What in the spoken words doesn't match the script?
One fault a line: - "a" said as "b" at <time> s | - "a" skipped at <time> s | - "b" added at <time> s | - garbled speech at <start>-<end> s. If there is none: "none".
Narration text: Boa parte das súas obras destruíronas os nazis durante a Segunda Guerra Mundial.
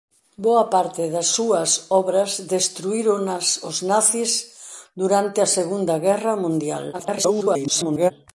- garbled speech at 6.9-8.1 s